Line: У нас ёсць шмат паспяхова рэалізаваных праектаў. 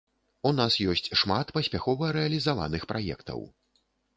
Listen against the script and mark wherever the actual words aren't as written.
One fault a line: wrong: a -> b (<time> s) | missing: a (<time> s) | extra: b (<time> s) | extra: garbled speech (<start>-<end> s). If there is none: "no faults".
no faults